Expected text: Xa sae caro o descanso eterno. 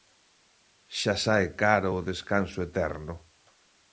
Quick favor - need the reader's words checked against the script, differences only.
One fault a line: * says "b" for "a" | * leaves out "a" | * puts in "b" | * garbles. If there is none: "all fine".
all fine